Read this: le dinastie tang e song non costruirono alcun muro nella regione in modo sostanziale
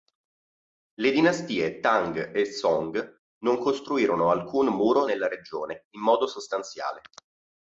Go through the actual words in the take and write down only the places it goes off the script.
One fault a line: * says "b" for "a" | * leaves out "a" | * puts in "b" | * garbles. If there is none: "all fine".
all fine